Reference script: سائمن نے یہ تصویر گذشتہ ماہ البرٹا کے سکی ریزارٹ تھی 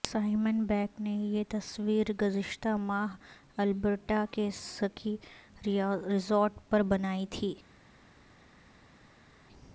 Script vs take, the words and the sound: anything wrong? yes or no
yes